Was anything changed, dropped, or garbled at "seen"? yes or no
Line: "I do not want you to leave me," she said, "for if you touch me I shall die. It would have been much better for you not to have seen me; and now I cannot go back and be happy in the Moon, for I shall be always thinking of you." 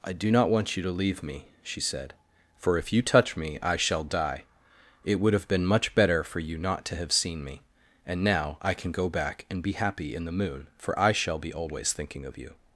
no